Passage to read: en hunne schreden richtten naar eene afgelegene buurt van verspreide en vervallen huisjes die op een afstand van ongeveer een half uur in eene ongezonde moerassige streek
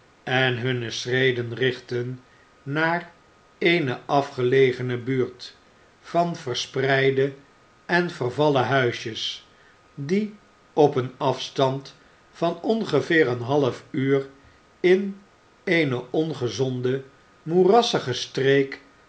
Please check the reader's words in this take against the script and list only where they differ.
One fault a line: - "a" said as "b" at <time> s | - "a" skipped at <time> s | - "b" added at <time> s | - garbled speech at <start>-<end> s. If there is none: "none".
none